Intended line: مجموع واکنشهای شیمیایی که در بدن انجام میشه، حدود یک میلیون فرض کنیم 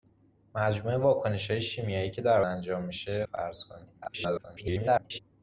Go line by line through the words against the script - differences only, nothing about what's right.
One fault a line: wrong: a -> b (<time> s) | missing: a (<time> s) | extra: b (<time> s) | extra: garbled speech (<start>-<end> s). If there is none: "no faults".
missing: بدن (2.4 s)
missing: حدود یک میلیون (3.3 s)
extra: garbled speech (4.0-5.2 s)